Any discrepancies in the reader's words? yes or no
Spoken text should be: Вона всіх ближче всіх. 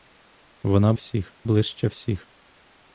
no